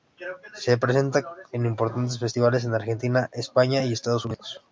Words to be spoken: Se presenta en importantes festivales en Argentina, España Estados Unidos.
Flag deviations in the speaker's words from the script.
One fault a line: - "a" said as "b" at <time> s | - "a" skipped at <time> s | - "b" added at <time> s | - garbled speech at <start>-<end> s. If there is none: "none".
- "y" added at 3.8 s